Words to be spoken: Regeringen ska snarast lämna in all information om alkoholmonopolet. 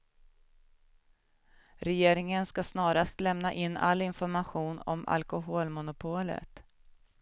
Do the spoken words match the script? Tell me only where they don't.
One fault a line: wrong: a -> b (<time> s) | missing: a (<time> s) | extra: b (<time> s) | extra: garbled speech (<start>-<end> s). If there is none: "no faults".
no faults